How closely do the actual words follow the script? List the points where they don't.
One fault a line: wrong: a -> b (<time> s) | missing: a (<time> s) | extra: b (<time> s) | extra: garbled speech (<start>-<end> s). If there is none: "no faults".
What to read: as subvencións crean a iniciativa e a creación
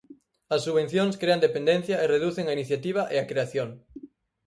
extra: dependencia e reducen (1.4 s)